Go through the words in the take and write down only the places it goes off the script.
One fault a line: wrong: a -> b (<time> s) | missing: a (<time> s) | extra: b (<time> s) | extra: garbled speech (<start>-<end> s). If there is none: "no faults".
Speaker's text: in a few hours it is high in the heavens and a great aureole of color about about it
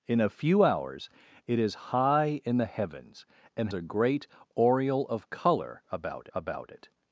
no faults